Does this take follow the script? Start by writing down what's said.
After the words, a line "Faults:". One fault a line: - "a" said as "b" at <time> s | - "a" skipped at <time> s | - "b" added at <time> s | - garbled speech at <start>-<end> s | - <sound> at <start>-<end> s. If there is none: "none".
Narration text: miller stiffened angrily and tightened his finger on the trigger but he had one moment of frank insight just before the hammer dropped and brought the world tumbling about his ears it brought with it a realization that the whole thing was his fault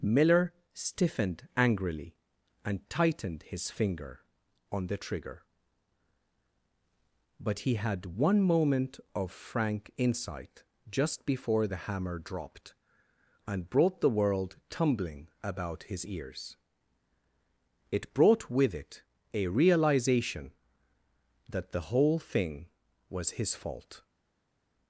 miller stiffened angrily and tightened his finger on the trigger but he had one moment of frank insight just before the hammer dropped and brought the world tumbling about his ears it brought with it a realization that the whole thing was his fault
Faults:
none